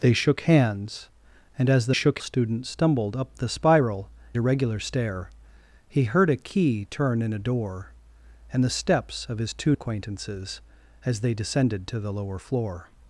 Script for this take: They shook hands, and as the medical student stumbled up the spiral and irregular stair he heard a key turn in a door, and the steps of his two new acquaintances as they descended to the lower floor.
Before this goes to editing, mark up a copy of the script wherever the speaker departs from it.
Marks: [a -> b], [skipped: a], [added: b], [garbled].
They shook hands, and as the [medical -> shook] student stumbled up the spiral [skipped: and] irregular stair he heard a key turn in a door, and the steps of his two [skipped: new] acquaintances as they descended to the lower floor.